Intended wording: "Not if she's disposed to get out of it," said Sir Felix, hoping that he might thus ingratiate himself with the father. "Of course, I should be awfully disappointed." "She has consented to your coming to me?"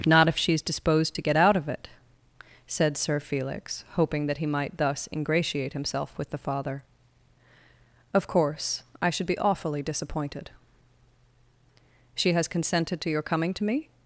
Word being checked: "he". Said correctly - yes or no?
yes